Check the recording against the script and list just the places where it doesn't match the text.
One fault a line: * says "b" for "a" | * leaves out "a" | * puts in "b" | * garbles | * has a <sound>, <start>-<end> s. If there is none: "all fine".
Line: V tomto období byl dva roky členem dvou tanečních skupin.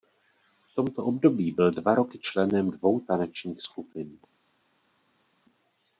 all fine